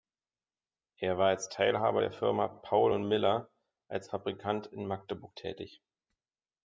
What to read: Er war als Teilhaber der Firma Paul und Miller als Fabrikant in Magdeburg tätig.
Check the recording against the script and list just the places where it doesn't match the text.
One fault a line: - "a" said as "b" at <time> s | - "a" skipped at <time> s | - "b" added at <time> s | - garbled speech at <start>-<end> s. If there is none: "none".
none